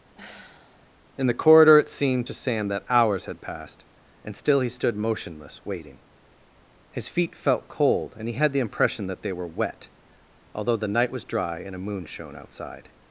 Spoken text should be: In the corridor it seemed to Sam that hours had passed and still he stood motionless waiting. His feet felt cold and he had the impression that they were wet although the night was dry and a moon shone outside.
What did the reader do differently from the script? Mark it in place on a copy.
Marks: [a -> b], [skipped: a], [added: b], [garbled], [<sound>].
[sigh] In the corridor it seemed to Sam that hours had passed and still he stood motionless waiting. His feet felt cold and he had the impression that they were wet although the night was dry and a moon shone outside.